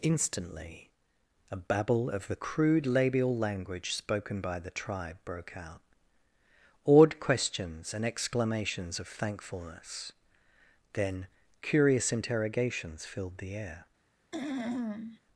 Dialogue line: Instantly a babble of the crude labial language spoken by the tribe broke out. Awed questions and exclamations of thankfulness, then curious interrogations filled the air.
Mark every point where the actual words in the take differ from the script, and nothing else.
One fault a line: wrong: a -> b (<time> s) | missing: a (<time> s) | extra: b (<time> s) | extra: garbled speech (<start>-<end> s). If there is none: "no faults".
no faults